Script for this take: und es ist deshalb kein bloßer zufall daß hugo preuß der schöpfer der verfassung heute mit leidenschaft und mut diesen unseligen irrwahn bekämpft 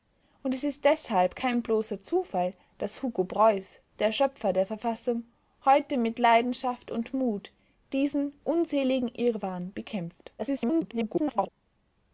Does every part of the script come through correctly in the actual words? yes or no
no